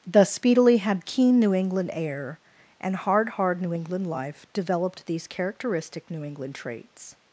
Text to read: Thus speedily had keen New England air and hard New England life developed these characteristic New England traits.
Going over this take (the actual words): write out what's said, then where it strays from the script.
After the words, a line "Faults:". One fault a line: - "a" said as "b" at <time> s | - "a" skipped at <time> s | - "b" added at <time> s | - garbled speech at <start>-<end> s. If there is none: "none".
Thus speedily had keen New England air and hard hard New England life developed these characteristic New England traits.
Faults:
- "hard" added at 3.3 s